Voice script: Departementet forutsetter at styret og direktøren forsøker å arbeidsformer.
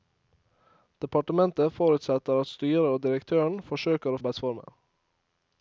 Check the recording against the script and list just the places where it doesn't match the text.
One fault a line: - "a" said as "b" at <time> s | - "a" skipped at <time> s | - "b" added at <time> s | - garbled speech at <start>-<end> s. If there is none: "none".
none